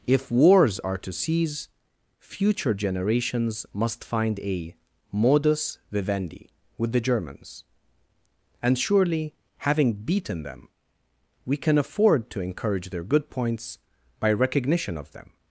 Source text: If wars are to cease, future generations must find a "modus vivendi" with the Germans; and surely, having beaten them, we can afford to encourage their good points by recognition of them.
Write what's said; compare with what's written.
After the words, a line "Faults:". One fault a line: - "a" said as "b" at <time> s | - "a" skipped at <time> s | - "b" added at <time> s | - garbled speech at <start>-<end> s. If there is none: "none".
If wars are to cease, future generations must find a "modus vivendi" with the Germans; and surely, having beaten them, we can afford to encourage their good points by recognition of them.
Faults:
none